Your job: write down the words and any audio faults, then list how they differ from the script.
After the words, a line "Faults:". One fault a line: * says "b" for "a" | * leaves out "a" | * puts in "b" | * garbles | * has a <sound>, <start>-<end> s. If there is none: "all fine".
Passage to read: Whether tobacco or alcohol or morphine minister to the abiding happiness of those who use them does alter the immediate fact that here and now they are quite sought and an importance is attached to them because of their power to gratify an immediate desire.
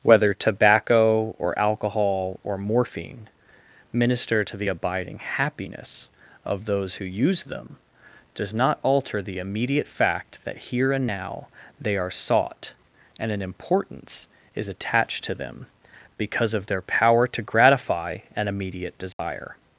Whether tobacco or alcohol or morphine minister to the abiding happiness of those who use them does not alter the immediate fact that here and now they are sought and an importance is attached to them because of their power to gratify an immediate desire.
Faults:
* puts in "not"
* leaves out "quite"
* has a dropout, 19.1-19.2 s